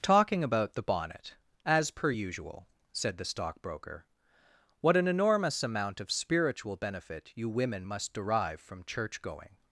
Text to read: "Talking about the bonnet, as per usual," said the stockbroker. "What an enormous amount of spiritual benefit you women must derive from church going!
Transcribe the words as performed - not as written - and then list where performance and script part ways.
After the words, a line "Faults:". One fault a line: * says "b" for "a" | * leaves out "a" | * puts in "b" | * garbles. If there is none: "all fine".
"Talking about the bonnet, as per usual," said the stockbroker. "What an enormous amount of spiritual benefit you women must derive from church going!
Faults:
all fine